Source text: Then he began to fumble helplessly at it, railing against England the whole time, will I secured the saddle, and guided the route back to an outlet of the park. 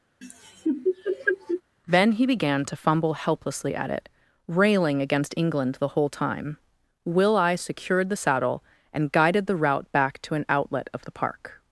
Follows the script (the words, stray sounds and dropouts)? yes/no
no